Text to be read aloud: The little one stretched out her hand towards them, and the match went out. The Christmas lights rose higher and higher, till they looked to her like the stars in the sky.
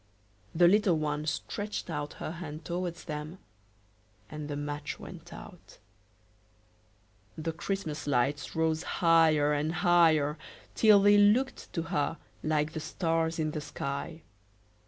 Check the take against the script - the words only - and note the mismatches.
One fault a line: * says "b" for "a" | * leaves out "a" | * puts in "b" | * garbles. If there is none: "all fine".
all fine